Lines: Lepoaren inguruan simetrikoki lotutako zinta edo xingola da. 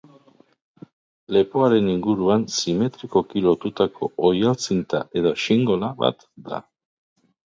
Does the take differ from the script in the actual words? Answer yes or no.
yes